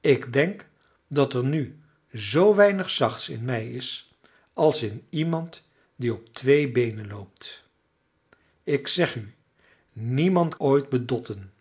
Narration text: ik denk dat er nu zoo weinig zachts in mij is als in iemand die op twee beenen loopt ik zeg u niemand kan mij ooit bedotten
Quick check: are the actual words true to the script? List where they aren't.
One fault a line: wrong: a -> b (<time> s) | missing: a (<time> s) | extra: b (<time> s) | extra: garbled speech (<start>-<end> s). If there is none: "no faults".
missing: kan mij (10.6 s)